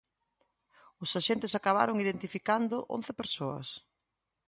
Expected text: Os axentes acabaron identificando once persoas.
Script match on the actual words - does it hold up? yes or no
yes